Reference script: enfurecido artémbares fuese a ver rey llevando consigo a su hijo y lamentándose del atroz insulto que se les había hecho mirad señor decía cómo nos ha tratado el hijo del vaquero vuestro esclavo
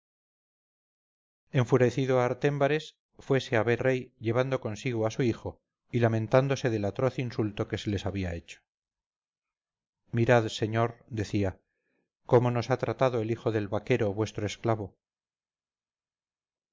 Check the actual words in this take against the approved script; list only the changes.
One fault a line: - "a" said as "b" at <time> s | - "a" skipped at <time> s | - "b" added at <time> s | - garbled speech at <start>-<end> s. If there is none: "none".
none